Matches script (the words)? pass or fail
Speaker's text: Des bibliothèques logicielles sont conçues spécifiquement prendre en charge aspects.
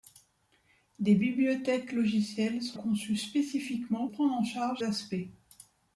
pass